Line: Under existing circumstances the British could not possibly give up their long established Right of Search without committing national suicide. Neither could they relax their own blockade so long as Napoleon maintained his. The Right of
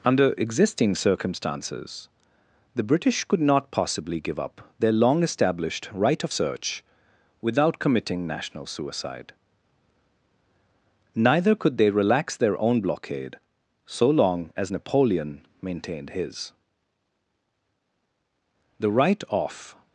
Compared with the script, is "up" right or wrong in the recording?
right